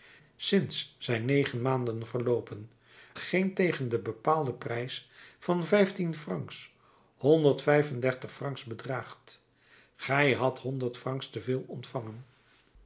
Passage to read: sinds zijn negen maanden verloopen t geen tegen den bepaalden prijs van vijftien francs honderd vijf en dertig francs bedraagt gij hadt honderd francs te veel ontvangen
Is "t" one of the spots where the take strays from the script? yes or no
yes